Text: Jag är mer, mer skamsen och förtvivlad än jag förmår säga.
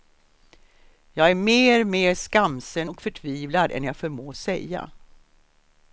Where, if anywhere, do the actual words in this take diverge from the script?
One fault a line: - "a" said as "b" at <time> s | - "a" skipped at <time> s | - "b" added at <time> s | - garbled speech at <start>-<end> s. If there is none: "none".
none